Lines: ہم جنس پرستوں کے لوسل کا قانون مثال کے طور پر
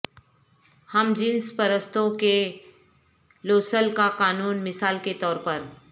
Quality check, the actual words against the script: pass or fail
pass